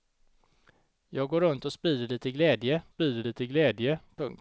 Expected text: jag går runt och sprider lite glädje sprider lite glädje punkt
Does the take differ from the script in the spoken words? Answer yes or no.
no